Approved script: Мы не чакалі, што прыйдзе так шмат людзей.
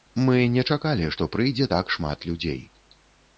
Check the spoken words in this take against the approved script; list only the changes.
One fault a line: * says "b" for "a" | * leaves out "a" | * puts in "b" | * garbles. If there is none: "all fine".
all fine